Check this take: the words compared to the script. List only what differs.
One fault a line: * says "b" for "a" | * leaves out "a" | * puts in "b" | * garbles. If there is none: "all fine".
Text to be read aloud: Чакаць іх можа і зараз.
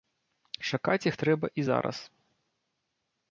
* says "трэба" for "можа"